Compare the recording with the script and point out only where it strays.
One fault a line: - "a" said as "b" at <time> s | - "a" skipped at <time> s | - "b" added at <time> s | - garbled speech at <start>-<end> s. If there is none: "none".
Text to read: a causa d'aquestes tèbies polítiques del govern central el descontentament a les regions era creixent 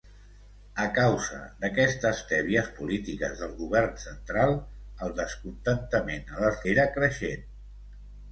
- "regions" skipped at 6.6 s